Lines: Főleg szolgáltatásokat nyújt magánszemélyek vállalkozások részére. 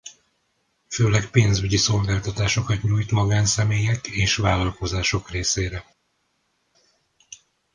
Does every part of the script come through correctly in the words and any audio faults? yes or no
no